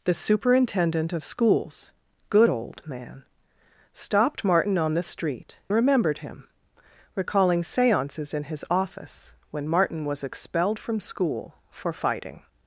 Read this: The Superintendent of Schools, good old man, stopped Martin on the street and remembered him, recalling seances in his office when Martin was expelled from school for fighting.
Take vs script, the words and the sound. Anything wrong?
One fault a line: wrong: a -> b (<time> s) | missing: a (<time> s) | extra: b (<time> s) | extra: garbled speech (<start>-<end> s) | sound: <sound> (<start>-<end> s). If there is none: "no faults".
missing: and (5.6 s)